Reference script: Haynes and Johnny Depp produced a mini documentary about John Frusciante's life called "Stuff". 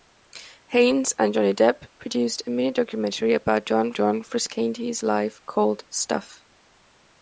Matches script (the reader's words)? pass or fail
fail